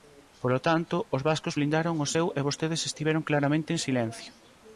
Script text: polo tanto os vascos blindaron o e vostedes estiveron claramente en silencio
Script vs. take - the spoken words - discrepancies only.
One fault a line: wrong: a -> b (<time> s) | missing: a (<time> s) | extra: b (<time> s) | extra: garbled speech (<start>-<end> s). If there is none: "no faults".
extra: seu (2.1 s)